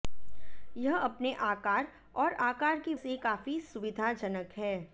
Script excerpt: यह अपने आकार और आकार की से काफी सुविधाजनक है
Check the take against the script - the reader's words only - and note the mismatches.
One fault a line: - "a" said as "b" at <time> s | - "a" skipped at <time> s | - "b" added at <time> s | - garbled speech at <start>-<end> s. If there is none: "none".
none